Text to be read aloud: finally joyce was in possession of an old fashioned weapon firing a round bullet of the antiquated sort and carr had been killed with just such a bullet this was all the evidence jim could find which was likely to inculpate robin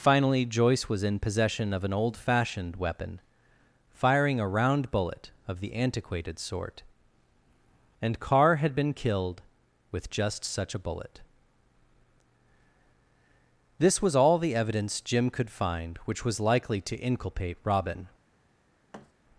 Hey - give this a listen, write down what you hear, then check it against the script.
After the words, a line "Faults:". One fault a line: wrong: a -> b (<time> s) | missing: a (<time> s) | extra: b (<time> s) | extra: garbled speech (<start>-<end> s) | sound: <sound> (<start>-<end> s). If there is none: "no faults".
finally joyce was in possession of an old fashioned weapon firing a round bullet of the antiquated sort and carr had been killed with just such a bullet this was all the evidence jim could find which was likely to inculpate robin
Faults:
sound: thud (18.9-19.1 s)